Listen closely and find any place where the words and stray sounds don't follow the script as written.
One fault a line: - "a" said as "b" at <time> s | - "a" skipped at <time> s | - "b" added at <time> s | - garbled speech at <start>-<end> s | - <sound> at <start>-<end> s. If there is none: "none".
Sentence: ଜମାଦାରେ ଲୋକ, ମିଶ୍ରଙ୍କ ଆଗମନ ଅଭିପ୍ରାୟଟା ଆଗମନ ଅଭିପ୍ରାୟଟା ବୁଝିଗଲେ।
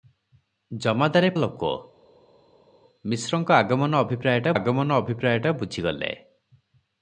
none